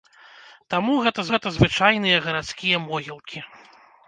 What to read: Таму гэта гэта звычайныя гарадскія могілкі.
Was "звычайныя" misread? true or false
false